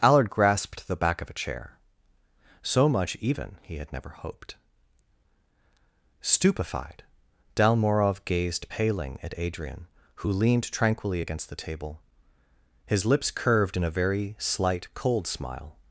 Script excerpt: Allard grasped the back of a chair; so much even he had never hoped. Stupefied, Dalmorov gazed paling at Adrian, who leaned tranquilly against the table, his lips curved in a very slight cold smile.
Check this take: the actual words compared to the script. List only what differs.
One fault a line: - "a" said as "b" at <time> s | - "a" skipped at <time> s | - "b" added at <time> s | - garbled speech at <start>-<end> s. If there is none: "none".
none